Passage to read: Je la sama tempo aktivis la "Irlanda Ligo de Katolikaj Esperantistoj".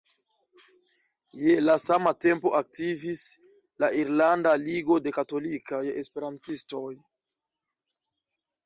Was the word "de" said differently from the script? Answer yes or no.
no